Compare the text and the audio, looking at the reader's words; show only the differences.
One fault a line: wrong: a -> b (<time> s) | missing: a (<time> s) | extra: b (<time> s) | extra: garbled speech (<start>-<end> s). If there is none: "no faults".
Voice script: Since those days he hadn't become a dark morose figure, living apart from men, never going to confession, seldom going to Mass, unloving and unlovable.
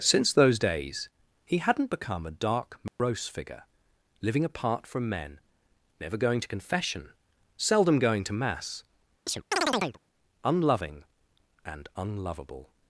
no faults